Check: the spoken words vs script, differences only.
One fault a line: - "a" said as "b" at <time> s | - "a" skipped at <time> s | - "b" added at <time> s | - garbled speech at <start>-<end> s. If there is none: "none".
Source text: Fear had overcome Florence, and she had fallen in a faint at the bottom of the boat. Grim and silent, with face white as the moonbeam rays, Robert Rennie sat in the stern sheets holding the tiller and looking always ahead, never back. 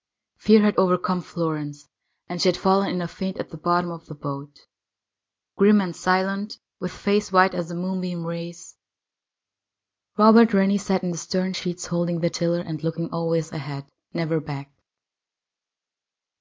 none